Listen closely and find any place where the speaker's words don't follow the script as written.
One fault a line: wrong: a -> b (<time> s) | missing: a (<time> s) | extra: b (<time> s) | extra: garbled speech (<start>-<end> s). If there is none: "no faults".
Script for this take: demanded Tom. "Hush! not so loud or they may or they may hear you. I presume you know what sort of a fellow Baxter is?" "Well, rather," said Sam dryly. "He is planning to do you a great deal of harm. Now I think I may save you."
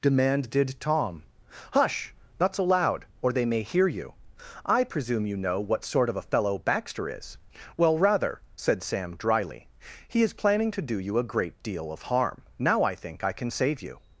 missing: or they may (3.6 s)
wrong: may -> can (13.3 s)